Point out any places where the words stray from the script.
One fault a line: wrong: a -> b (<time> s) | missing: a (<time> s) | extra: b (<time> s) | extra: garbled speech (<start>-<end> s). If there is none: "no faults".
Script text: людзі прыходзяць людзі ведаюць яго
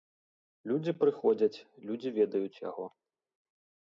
no faults